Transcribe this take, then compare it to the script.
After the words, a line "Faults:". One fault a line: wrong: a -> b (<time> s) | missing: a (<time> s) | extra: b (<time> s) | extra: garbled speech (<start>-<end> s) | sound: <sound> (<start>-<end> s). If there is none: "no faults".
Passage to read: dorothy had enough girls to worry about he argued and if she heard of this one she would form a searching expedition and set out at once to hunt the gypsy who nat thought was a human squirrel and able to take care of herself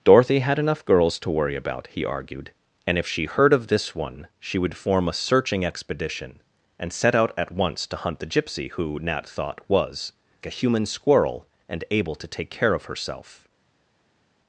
dorothy had enough girls to worry about he argued and if she heard of this one she would form a searching expedition and set out at once to hunt the gypsy who nat thought was a human squirrel and able to take care of herself
Faults:
no faults